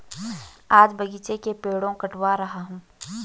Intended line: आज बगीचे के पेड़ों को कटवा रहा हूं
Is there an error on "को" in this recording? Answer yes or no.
yes